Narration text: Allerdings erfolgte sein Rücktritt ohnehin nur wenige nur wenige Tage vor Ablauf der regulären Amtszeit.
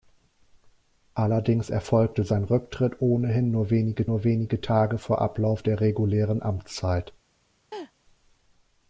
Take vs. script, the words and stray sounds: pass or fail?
fail